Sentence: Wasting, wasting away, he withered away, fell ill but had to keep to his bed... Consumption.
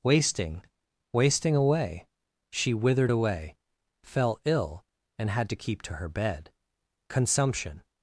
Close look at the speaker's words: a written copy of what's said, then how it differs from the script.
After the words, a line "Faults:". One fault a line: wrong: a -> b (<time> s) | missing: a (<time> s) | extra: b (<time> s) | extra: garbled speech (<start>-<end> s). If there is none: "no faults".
Wasting, wasting away, she withered away, fell ill and had to keep to her bed... Consumption.
Faults:
wrong: he -> she (2.5 s)
wrong: but -> and (5.2 s)
wrong: his -> her (5.9 s)